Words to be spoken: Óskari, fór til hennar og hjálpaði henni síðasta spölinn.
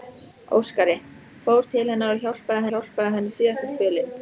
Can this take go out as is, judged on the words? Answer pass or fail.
fail